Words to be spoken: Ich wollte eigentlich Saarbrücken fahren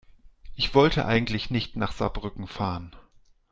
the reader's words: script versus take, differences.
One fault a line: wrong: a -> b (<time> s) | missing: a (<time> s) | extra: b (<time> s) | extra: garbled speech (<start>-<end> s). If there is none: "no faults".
extra: nicht nach (1.5 s)